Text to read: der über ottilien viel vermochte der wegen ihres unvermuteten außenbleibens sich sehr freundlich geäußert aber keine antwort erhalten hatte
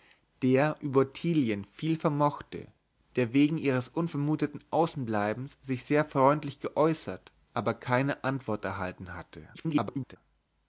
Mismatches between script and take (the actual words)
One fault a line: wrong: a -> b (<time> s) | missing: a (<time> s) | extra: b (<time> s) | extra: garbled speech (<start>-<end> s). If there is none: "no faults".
extra: garbled speech (9.5-10.2 s)